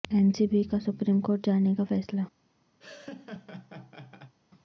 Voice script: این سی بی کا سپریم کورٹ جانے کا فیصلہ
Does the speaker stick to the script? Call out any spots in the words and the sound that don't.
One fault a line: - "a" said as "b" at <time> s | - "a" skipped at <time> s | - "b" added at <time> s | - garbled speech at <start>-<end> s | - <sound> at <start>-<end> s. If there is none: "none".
- laugh at 2.8-4.3 s